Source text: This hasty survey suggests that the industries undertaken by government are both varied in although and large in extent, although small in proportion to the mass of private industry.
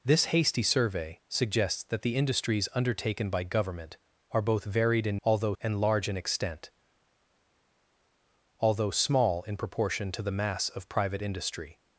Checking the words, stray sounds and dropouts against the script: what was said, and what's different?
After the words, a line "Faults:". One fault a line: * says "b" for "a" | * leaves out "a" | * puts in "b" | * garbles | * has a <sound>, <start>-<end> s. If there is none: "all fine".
This hasty survey suggests that the industries undertaken by government are both varied in although and large in extent, although small in proportion to the mass of private industry.
Faults:
all fine